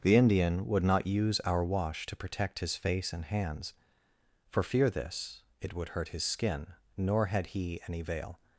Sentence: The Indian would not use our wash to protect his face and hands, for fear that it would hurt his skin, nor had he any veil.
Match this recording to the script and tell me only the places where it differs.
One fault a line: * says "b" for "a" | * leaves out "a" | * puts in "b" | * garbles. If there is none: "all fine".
* says "this" for "that"